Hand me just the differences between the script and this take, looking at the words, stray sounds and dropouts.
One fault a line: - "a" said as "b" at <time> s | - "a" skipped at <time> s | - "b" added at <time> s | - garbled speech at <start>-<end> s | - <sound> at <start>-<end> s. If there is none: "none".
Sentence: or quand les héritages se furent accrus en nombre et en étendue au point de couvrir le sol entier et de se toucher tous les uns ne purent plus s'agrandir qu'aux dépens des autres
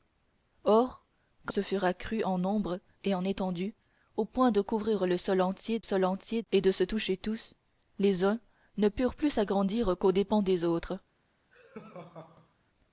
- "les héritages" skipped at 1.5 s
- "sol entier" added at 5.8 s
- laugh at 11.5-12.5 s